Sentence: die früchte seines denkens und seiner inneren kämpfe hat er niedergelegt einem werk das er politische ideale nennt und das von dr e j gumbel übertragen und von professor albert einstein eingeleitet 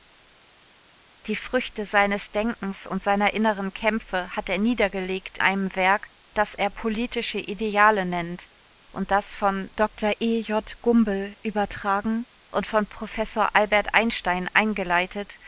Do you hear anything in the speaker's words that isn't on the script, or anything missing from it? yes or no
no